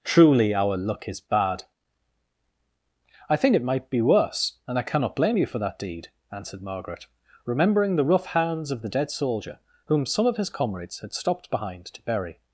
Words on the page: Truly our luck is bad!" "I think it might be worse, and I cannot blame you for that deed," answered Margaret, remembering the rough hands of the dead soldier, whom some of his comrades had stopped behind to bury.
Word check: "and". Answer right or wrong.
right